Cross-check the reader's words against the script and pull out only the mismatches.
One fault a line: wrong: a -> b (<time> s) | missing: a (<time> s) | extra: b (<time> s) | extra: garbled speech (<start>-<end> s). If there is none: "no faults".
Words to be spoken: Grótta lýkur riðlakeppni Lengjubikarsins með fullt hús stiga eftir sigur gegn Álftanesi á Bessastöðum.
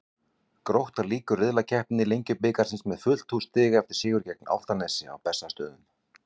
no faults